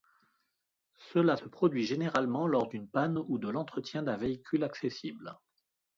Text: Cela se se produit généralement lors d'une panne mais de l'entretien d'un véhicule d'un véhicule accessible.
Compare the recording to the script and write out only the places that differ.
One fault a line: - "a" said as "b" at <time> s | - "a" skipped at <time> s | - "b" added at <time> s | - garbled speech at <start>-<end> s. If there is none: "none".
- "se" skipped at 1.5 s
- "mais" said as "ou" at 3.2 s
- "d'un véhicule" skipped at 4.6 s